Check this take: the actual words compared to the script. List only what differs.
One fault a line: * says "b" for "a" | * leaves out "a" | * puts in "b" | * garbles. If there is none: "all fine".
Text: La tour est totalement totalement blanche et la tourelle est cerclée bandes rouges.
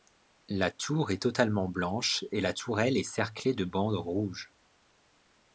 * leaves out "totalement"
* puts in "de"